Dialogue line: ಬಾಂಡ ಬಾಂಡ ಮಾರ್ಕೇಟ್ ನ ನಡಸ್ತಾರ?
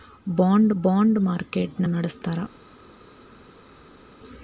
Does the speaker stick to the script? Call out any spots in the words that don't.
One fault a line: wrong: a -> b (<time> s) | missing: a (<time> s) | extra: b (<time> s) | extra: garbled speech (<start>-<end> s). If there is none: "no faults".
no faults